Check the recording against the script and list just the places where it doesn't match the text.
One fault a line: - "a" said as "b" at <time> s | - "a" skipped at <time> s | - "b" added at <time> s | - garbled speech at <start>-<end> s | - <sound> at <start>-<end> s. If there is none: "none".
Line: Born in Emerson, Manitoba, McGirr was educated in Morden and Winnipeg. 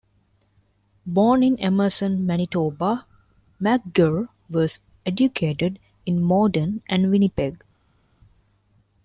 none